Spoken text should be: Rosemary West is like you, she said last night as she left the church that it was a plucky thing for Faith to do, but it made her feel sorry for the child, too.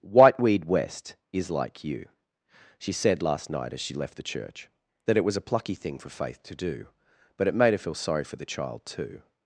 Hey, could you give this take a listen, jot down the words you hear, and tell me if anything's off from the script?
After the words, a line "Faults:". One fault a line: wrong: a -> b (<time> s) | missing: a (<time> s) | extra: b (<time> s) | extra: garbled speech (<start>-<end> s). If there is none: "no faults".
Whiteweed West is like you, she said last night as she left the church that it was a plucky thing for Faith to do, but it made her feel sorry for the child, too.
Faults:
wrong: Rosemary -> Whiteweed (0.0 s)